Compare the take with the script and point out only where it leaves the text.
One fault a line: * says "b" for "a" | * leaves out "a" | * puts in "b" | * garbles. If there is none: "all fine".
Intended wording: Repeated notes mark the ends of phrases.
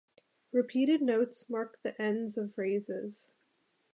all fine